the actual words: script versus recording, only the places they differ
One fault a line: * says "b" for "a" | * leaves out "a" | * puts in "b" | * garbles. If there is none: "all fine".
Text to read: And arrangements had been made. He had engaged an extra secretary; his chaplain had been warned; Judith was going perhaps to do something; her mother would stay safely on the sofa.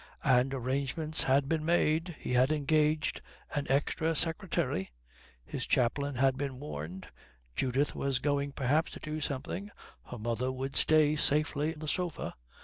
* leaves out "on"